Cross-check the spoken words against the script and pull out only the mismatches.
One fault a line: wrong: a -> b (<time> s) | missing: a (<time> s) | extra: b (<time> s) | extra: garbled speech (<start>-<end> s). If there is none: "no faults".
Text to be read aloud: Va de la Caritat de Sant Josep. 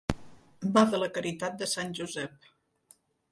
no faults